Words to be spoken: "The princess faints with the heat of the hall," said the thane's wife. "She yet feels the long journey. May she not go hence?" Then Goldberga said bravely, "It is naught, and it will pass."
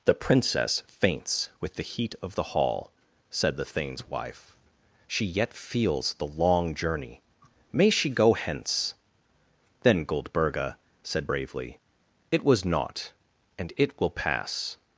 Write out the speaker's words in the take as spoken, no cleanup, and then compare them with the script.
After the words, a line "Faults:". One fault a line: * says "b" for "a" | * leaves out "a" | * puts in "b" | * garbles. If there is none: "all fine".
"The princess faints with the heat of the hall," said the thane's wife. "She yet feels the long journey. May she go hence?" Then Goldberga said bravely, "It was naught, and it will pass."
Faults:
* leaves out "not"
* says "was" for "is"